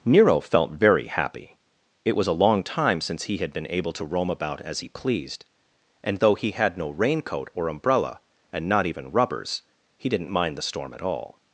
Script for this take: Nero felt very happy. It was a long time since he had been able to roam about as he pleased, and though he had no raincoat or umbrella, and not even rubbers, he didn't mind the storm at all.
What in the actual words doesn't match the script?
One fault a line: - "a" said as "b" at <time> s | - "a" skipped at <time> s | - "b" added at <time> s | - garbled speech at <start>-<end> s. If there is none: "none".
none